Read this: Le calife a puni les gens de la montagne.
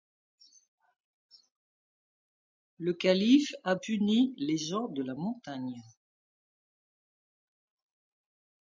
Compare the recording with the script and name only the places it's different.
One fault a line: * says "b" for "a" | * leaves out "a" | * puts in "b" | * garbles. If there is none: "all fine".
all fine